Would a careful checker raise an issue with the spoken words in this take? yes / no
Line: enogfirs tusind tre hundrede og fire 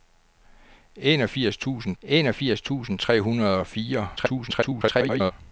yes